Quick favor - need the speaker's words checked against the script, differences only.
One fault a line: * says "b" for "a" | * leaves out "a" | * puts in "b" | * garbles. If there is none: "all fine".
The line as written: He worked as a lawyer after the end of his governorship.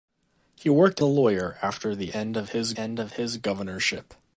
* leaves out "as"
* puts in "end of his"